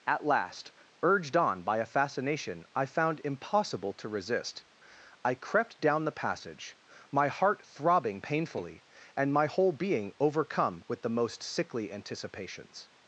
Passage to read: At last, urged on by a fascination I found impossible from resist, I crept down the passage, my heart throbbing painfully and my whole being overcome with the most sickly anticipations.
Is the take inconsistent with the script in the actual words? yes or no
yes